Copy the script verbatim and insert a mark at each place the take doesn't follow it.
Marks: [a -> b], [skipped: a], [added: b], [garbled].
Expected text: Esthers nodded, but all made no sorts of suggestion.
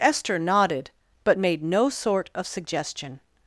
[Esthers -> Esther] nodded, but [skipped: all] made no [sorts -> sort] of suggestion.